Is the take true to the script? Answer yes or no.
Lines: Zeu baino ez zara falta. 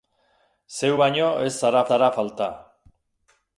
no